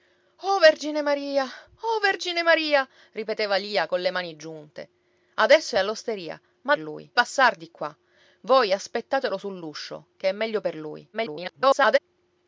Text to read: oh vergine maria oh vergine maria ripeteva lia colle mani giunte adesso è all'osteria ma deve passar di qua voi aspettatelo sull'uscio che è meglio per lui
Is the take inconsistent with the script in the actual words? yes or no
yes